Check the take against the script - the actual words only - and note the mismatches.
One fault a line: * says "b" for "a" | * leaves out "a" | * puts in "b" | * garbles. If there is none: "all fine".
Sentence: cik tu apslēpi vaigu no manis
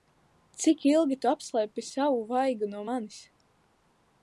* puts in "ilgi"
* puts in "savu"